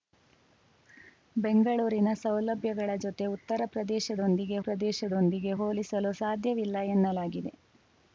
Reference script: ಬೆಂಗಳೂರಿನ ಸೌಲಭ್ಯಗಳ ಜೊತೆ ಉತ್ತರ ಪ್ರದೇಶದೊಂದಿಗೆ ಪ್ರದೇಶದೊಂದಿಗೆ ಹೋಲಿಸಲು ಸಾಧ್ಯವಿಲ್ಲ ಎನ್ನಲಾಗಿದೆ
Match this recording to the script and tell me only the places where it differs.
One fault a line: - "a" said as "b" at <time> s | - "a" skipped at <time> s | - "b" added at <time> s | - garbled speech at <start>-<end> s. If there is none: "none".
none